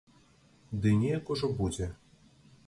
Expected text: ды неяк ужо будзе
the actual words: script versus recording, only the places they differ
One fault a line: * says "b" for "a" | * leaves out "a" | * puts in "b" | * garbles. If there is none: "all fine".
all fine